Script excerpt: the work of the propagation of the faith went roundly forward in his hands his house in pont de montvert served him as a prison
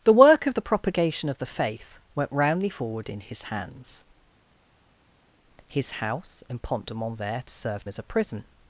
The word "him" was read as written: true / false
false